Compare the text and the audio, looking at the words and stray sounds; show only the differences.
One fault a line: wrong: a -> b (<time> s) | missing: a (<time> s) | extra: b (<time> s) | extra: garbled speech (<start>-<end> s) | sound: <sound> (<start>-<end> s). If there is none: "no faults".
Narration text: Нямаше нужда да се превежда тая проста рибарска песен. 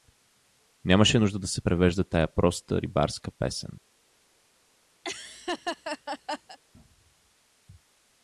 sound: laugh (5.0-6.6 s)